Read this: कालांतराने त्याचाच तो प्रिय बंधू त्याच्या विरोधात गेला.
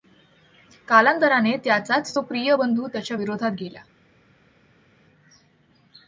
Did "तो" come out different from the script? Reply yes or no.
no